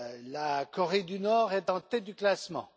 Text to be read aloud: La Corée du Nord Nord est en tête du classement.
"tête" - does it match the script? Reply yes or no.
yes